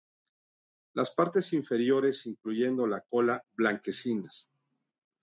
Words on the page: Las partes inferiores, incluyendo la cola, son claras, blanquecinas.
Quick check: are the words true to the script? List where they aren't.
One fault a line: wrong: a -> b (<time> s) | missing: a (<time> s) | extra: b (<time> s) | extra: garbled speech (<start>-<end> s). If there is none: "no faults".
missing: son claras (3.4 s)